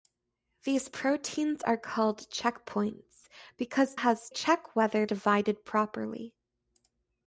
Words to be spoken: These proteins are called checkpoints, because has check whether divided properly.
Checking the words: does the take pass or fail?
pass